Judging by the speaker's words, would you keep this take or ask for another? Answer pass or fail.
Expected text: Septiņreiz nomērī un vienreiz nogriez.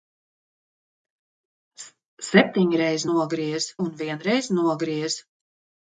fail